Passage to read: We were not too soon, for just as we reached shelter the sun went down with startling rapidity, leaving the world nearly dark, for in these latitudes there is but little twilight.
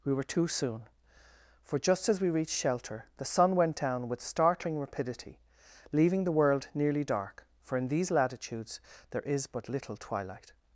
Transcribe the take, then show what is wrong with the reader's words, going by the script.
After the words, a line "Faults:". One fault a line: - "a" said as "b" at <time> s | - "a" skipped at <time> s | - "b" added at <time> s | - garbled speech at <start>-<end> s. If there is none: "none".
We were too soon, for just as we reached shelter the sun went down with startling rapidity, leaving the world nearly dark, for in these latitudes there is but little twilight.
Faults:
- "not" skipped at 0.2 s